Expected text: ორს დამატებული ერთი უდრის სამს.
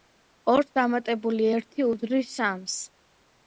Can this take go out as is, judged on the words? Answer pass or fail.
pass